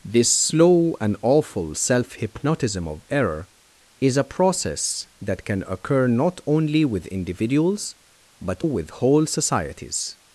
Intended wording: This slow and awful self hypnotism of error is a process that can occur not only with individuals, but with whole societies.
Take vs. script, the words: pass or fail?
pass